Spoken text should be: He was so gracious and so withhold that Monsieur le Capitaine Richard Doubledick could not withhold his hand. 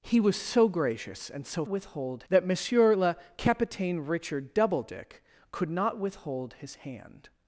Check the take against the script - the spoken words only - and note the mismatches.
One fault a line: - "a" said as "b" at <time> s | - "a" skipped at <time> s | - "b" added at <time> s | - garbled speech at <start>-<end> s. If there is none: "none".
none